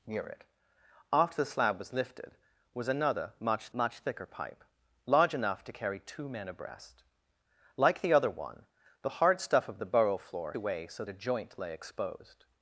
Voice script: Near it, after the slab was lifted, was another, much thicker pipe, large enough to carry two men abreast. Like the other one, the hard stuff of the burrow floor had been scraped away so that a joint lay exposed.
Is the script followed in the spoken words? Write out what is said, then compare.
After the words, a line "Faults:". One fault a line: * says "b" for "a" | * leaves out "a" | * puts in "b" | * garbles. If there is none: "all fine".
Near it, after the slab was lifted, was another, much much thicker pipe, large enough to carry two men abreast. Like the other one, the hard stuff of the burrow floor away so a joint lay exposed.
Faults:
* puts in "much"
* leaves out "had been scraped"
* leaves out "that"